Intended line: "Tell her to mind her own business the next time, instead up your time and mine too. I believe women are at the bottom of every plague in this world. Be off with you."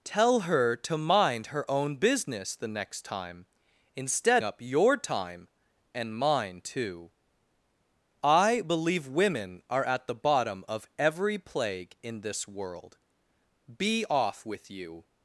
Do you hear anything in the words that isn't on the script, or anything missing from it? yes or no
no